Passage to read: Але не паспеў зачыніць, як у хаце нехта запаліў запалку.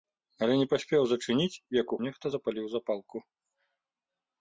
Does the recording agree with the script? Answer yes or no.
no